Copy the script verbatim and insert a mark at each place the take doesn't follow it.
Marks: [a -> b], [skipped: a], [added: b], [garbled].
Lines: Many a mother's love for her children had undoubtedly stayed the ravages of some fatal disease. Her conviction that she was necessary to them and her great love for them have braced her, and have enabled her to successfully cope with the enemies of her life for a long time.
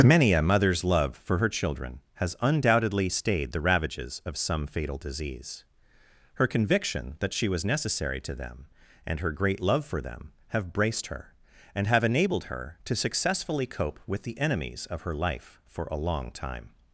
Many a mother's love for her children [had -> has] undoubtedly stayed the ravages of some fatal disease. Her conviction that she was necessary to them and her great love for them have braced her, and have enabled her to successfully cope with the enemies of her life for a long time.